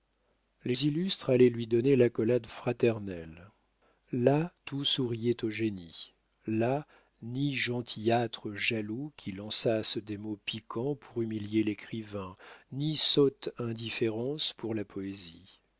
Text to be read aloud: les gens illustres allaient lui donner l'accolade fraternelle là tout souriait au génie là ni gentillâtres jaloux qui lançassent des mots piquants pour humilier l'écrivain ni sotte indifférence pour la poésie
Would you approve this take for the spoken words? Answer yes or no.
no